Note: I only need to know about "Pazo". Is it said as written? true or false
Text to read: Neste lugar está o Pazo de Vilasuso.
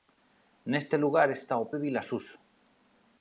false